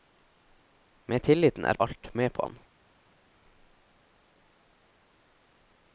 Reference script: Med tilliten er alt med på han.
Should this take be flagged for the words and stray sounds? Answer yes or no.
no